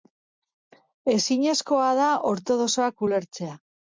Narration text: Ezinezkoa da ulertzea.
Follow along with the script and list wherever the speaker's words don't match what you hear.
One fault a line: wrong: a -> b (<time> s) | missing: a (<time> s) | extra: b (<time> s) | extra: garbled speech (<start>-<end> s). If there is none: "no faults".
extra: ortodoxoak (2.3 s)